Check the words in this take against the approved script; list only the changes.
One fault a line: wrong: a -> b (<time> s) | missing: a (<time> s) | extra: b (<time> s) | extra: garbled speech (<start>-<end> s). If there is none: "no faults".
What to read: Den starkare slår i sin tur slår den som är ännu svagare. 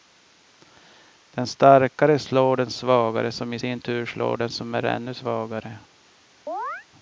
extra: den svagare som (2.6 s)